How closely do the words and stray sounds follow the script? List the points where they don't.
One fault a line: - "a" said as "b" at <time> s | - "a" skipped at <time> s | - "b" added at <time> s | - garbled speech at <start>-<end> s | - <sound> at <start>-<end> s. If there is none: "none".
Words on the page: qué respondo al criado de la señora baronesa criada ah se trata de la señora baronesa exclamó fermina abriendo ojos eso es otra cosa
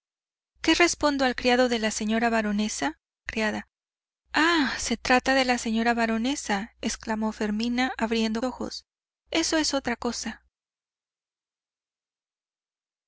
none